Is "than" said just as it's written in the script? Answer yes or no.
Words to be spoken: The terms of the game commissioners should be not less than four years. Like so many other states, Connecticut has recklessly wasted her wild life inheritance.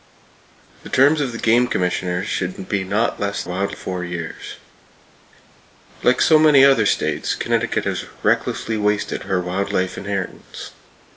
no